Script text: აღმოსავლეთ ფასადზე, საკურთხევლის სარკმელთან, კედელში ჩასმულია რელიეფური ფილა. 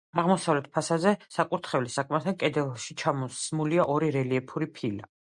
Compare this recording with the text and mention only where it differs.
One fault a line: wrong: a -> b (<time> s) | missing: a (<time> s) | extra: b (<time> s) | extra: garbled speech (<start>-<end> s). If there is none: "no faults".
extra: ორი (4.0 s)